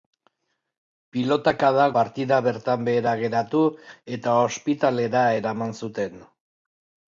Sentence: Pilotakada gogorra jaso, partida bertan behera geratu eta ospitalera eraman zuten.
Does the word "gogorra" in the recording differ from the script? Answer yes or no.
yes